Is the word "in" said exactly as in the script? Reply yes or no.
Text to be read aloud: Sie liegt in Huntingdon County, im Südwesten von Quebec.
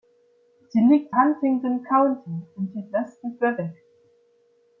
no